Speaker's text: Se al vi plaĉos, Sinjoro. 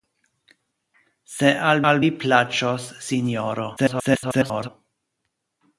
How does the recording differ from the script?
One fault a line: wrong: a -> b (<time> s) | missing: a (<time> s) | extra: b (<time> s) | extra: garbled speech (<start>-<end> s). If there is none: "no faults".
extra: al (1.9 s)
extra: garbled speech (3.8-4.7 s)